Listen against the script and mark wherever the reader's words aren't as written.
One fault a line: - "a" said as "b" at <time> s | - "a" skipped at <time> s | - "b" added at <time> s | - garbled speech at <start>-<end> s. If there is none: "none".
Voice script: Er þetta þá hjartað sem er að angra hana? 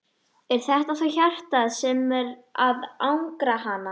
none